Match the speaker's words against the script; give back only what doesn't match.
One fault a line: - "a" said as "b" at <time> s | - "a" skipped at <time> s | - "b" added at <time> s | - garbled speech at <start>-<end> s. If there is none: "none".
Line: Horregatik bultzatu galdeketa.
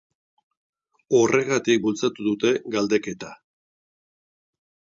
- "dute" added at 2.3 s